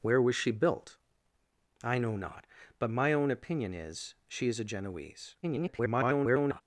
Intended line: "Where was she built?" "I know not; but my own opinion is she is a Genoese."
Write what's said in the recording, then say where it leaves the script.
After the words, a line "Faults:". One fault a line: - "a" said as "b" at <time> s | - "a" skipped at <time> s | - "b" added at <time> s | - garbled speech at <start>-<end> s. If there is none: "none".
"Where was she built?" "I know not; but my own opinion is she is a Genoese." [garbled]
Faults:
- garbled speech at 5.4-6.6 s